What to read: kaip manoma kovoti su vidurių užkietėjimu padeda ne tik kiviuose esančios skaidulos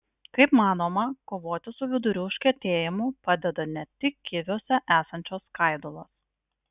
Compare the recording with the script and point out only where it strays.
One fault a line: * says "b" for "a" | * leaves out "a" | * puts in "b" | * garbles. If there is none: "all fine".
all fine